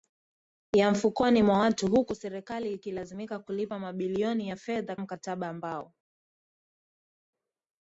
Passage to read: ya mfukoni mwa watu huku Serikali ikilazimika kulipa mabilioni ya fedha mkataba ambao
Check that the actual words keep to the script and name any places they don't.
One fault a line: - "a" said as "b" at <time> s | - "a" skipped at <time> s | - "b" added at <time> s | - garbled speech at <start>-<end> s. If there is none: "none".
none